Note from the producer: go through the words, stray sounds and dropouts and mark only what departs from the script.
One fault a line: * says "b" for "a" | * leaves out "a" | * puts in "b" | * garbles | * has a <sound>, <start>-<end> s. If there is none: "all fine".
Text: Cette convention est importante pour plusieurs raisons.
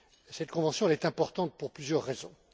all fine